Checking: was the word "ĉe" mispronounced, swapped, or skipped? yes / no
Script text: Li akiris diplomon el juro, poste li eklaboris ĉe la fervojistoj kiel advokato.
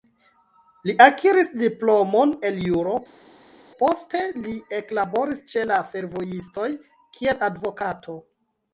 no